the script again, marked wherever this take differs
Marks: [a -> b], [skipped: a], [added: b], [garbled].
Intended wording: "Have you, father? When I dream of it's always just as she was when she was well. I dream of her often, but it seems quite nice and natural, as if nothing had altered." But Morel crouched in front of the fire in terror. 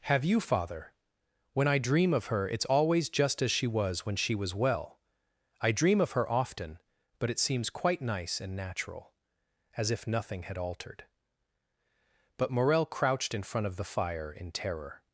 "Have you, father? When I dream of [added: her] it's always just as she was when she was well. I dream of her often, but it seems quite nice and natural, as if nothing had altered." But Morel crouched in front of the fire in terror.